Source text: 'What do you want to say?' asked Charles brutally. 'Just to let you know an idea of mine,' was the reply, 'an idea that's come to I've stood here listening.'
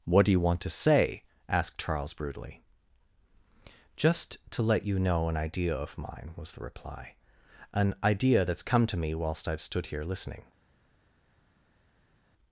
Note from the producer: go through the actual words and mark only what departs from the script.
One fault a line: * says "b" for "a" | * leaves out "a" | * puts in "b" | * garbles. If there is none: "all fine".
* puts in "me whilst"